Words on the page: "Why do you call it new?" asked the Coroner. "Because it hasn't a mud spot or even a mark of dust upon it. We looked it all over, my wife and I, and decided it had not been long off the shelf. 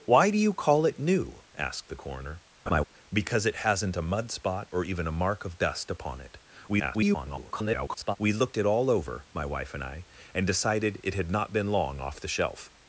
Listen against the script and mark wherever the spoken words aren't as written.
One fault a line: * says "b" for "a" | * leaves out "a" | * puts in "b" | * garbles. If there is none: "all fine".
* garbles